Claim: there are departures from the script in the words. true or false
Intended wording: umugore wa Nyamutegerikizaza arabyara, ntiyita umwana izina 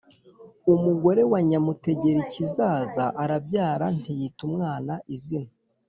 false